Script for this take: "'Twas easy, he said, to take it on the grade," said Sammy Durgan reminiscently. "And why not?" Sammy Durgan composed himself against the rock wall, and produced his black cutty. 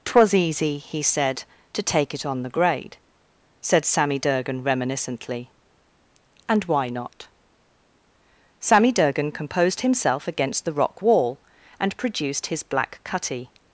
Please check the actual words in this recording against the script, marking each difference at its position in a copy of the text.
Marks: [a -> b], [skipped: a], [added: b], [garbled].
"'Twas easy, he said, to take it on the grade," said Sammy Durgan reminiscently. "And why not?" Sammy Durgan composed himself against the rock wall, and produced his black cutty.